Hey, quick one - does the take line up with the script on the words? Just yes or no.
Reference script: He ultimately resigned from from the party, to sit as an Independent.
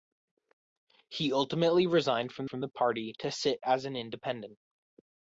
yes